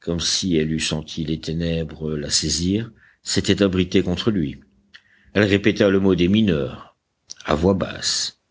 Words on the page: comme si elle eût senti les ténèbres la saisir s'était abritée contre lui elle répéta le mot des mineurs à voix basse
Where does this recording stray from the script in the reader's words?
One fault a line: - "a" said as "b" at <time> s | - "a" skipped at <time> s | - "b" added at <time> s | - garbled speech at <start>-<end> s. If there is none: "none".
none